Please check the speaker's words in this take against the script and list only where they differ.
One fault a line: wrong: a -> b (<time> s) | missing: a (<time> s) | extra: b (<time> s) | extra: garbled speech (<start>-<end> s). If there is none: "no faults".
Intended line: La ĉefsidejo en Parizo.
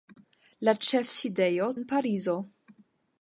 no faults